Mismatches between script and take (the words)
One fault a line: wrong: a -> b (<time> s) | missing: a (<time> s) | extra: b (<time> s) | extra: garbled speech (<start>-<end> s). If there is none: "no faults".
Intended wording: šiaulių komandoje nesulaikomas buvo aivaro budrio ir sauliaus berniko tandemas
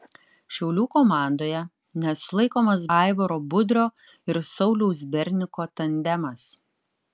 missing: buvo (2.9 s)